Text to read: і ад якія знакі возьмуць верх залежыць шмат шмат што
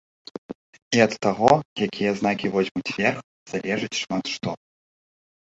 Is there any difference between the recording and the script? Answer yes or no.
yes